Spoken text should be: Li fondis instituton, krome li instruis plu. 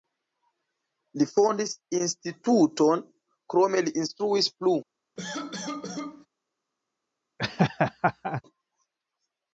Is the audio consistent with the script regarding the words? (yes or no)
yes